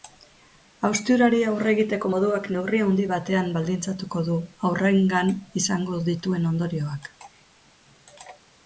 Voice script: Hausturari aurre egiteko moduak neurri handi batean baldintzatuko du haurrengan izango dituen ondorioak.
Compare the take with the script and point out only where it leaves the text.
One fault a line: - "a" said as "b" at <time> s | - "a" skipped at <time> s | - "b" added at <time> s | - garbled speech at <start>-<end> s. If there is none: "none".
none